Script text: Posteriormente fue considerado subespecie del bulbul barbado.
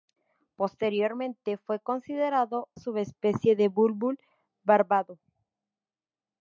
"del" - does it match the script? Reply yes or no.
yes